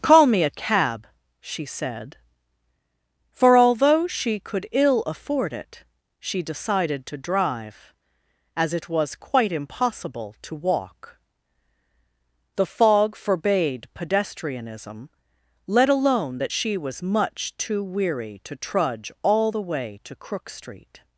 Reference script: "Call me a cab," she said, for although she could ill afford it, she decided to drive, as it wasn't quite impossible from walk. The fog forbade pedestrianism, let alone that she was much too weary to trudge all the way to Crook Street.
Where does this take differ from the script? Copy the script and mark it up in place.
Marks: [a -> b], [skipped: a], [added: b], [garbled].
"Call me a cab," she said, for although she could ill afford it, she decided to drive, as it [wasn't -> was] quite impossible [from -> to] walk. The fog forbade pedestrianism, let alone that she was much too weary to trudge all the way to Crook Street.